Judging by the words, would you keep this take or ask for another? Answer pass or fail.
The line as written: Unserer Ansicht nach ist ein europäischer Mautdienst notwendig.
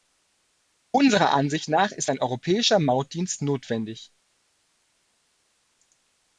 pass